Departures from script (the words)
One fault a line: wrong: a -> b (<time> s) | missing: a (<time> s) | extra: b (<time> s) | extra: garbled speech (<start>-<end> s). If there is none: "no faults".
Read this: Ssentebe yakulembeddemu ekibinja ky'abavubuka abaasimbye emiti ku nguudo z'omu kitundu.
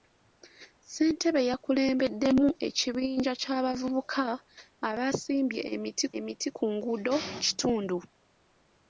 extra: emiti (6.2 s)
missing: z'omu (7.1 s)